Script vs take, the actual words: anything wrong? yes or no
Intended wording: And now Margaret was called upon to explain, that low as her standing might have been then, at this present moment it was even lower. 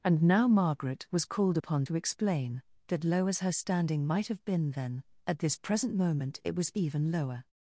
no